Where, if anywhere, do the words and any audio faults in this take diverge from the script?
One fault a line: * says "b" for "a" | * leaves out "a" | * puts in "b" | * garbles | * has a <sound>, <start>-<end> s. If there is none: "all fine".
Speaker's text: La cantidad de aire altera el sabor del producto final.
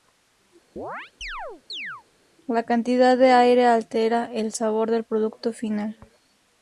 * has a chirp, 0.8-2.0 s